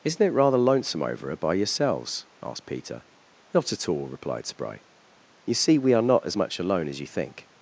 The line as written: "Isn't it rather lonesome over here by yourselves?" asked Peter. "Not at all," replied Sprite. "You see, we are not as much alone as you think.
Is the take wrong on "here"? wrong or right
wrong